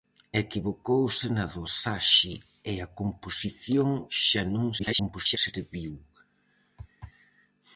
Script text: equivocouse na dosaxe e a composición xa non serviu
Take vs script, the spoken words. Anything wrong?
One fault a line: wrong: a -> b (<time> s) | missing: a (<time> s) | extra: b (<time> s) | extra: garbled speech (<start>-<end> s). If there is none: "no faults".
extra: garbled speech (4.8-5.4 s)